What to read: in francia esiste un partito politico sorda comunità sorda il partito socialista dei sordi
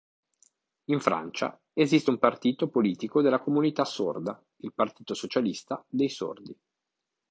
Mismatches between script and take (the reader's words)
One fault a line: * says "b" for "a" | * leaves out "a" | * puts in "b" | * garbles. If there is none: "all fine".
* says "della" for "sorda"